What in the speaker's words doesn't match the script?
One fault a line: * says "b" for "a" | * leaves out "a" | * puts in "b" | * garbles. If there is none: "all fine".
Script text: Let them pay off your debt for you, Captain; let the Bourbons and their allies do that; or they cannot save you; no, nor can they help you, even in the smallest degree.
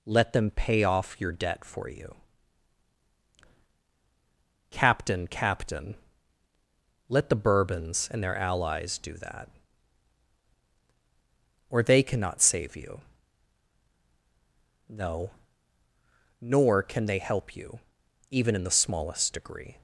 * puts in "Captain"